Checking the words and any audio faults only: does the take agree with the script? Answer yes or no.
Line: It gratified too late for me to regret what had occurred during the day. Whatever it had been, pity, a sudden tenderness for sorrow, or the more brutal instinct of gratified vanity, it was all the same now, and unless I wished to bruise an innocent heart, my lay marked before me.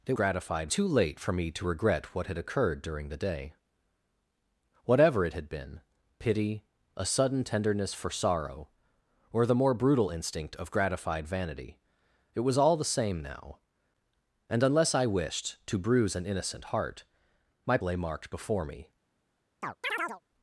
no